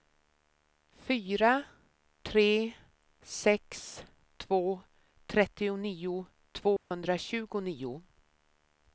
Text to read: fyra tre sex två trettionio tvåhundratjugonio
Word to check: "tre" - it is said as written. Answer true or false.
true